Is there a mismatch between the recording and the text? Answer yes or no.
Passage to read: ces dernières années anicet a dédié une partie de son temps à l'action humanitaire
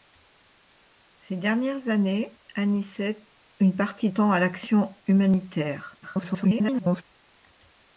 yes